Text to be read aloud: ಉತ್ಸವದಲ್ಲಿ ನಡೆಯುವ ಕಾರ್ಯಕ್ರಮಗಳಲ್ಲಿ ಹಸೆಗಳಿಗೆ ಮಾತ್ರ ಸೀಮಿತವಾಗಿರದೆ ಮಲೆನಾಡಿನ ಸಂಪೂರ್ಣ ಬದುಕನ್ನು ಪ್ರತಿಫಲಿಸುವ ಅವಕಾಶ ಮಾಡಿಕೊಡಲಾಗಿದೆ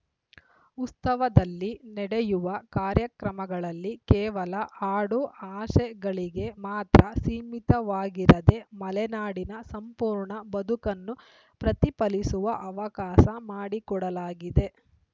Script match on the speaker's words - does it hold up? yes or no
no